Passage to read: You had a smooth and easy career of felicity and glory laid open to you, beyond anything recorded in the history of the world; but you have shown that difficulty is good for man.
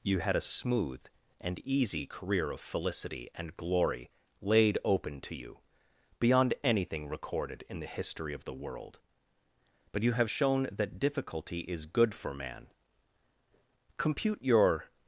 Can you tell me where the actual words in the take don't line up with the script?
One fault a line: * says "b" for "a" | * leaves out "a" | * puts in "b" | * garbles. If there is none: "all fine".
* puts in "Compute your"